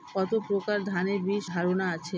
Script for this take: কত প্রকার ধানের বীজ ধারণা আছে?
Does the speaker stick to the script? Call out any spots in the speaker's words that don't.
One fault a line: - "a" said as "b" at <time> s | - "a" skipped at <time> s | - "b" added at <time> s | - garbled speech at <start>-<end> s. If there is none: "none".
none